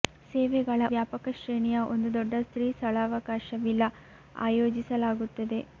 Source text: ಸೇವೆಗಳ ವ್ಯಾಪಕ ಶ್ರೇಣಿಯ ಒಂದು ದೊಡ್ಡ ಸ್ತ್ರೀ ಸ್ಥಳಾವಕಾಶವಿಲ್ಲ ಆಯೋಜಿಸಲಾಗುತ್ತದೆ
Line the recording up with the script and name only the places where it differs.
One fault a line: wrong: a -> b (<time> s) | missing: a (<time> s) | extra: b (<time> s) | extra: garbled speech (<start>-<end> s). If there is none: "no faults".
no faults